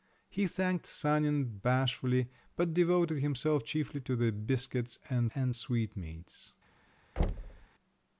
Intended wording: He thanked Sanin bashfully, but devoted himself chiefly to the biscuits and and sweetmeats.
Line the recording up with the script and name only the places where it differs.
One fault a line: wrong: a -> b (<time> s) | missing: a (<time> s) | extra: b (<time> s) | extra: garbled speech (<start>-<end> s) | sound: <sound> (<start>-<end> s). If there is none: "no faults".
sound: thud (7.2-7.7 s)